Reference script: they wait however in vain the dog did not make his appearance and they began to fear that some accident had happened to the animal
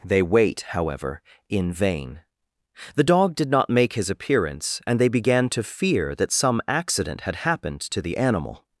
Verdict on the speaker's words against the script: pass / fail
pass